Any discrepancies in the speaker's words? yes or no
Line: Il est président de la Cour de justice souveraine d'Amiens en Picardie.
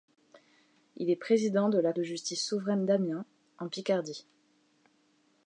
yes